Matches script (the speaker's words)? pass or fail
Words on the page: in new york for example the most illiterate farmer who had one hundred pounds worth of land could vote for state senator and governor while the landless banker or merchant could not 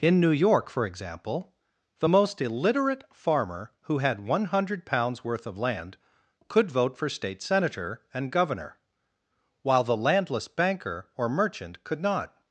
pass